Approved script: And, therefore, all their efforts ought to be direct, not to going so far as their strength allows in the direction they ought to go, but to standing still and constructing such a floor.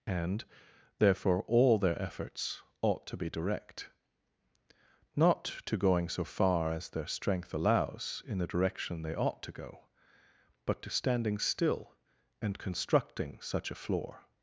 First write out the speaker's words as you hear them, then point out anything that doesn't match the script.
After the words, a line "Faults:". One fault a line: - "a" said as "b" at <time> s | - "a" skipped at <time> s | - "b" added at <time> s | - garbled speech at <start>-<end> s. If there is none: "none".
And, therefore, all their efforts ought to be direct, not to going so far as their strength allows in the direction they ought to go, but to standing still and constructing such a floor.
Faults:
none